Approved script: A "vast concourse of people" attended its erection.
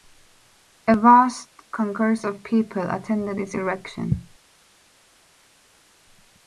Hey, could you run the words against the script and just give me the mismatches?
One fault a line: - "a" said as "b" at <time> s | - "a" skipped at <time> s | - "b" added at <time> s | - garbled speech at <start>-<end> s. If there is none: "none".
none